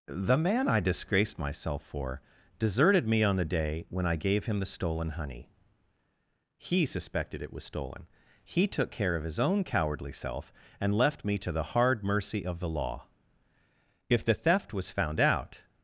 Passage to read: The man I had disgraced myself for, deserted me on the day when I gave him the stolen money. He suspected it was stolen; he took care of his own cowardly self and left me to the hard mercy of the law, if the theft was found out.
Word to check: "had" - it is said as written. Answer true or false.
false